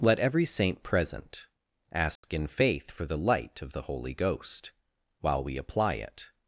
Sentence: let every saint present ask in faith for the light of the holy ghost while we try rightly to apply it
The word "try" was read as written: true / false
false